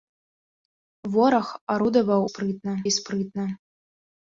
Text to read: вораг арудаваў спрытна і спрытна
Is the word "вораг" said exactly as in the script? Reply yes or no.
yes